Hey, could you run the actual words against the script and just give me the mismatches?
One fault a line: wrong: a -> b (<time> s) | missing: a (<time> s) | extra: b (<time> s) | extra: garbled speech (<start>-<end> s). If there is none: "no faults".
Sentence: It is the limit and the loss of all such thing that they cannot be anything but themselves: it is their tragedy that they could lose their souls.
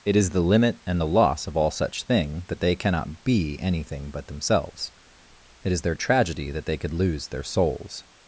no faults